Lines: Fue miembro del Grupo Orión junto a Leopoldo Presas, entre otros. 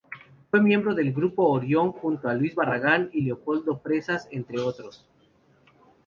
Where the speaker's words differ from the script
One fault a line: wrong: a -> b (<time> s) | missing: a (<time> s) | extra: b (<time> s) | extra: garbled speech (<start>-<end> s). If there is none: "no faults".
extra: Luis Barragán y (2.3 s)